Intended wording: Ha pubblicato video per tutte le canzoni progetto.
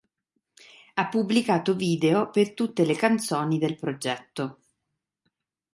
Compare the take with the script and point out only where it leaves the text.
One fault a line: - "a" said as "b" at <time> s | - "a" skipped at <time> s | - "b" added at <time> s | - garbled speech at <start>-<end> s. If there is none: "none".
- "del" added at 3.6 s